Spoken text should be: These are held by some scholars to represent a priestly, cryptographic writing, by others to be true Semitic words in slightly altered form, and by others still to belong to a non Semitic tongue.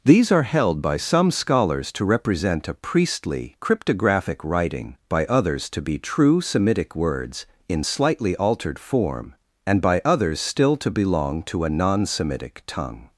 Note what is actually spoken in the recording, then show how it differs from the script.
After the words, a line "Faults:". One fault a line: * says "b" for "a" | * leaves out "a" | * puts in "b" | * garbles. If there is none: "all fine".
These are held by some scholars to represent a priestly, cryptographic writing, by others to be true Semitic words in slightly altered form, and by others still to belong to a non Semitic tongue.
Faults:
all fine